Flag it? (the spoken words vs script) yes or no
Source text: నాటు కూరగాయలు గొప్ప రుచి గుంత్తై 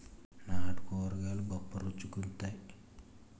no